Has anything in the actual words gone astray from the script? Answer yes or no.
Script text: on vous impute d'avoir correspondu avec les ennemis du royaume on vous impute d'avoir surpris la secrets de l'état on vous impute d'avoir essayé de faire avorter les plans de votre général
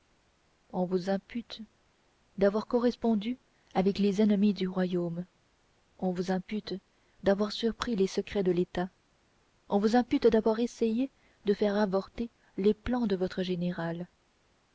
yes